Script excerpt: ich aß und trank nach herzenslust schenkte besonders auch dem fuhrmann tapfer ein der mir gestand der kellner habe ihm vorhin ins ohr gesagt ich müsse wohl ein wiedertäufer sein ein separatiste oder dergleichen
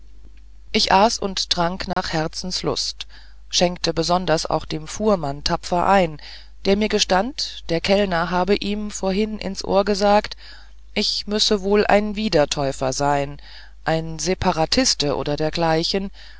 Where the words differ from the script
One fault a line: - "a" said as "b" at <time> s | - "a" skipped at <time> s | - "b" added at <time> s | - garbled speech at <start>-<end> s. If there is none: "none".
none